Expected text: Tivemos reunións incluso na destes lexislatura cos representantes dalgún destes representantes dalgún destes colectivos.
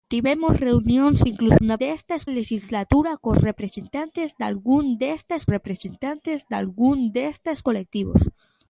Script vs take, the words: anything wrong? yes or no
no